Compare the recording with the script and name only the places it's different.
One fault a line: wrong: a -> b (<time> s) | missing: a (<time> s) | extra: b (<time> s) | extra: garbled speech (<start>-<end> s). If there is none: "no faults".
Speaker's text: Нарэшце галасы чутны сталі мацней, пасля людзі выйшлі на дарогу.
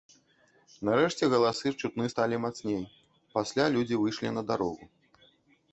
no faults